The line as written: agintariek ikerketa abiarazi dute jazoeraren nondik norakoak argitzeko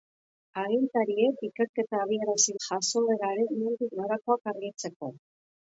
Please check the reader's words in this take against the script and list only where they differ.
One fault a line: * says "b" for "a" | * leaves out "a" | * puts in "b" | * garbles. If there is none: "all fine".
* leaves out "dute"